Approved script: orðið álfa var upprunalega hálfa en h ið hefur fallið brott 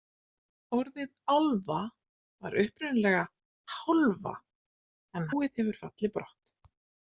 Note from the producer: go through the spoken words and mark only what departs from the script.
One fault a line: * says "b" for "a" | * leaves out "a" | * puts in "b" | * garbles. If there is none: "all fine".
* leaves out "h"